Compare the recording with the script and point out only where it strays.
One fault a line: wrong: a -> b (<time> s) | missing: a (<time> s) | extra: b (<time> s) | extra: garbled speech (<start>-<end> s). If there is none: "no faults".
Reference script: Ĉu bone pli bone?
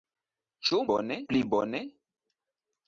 no faults